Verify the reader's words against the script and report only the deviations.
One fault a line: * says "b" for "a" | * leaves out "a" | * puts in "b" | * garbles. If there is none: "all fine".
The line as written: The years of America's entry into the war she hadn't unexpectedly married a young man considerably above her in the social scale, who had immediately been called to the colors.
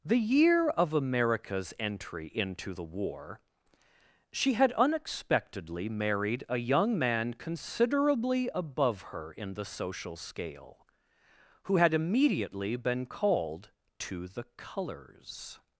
* says "year" for "years"
* says "had" for "hadn't"